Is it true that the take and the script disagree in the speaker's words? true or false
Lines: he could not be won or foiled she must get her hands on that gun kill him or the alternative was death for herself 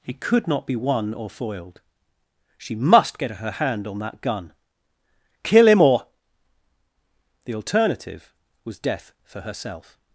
true